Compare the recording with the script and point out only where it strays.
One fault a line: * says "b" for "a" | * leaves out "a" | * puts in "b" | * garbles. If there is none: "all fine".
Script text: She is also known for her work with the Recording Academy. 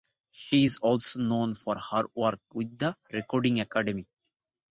all fine